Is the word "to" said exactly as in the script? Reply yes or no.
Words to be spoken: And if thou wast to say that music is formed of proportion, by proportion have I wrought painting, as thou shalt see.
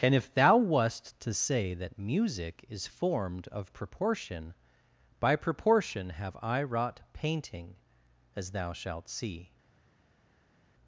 yes